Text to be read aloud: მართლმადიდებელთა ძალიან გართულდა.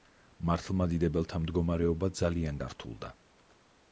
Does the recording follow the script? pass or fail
fail